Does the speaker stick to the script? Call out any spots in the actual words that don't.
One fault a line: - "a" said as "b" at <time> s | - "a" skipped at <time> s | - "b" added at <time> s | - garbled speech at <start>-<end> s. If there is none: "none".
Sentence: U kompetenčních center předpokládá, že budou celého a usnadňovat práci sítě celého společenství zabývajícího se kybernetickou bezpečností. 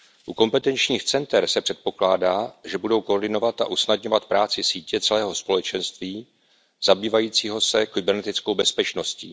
- "se" added at 1.5 s
- "celého" said as "koordinovat" at 3.0 s